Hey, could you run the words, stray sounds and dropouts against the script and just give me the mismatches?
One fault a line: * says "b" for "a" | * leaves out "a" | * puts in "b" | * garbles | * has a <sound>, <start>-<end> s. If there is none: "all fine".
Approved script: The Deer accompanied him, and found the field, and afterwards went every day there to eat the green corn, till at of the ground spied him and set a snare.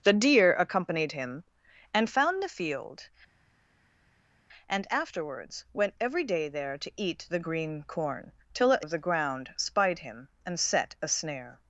all fine